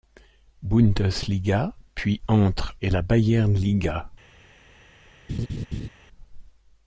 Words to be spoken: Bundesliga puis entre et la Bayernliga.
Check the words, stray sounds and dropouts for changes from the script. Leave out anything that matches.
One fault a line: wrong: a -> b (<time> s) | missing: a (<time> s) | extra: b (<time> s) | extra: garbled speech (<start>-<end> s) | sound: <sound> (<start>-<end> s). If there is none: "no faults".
sound: laugh (5.3-5.9 s)